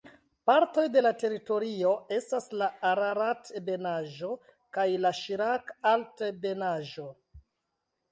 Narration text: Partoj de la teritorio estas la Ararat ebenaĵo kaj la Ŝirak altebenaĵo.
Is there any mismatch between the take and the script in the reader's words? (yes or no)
no